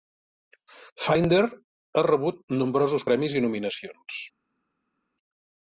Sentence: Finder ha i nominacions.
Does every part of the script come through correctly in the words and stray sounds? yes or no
no